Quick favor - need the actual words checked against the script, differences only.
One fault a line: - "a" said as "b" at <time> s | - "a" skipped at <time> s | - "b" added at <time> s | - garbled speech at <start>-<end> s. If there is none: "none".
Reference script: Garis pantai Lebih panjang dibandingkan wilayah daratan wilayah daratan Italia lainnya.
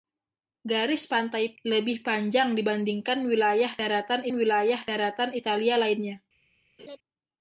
none